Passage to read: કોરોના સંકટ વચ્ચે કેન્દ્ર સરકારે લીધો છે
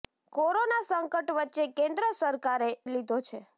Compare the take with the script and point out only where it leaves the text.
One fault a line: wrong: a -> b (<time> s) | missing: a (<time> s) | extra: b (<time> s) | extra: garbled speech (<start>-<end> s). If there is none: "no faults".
no faults